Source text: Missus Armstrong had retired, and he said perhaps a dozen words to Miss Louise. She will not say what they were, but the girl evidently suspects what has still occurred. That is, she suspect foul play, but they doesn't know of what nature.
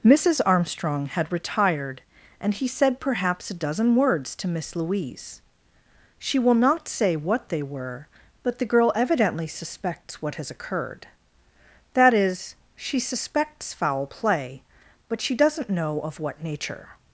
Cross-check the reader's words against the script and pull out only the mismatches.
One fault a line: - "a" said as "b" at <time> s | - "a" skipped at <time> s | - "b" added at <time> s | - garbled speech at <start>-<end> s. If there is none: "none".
- "still" skipped at 10.5 s
- "suspect" said as "suspects" at 13.0 s
- "they" said as "she" at 15.2 s